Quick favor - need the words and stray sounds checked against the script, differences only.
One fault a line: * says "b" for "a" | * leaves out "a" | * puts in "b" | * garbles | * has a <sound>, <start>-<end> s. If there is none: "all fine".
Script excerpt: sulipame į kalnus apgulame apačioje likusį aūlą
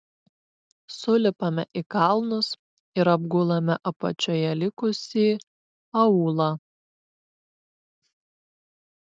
* puts in "ir"